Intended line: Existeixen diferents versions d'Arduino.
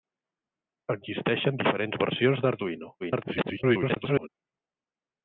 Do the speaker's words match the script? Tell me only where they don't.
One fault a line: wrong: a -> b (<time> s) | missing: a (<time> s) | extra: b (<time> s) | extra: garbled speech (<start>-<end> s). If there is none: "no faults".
extra: garbled speech (3.0-4.3 s)